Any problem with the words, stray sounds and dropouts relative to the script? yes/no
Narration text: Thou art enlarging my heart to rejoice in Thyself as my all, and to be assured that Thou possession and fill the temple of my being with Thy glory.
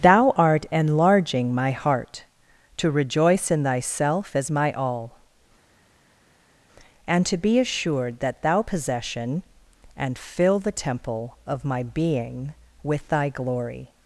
no